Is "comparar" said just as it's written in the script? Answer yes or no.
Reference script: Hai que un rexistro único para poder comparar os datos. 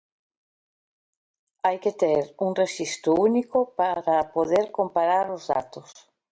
yes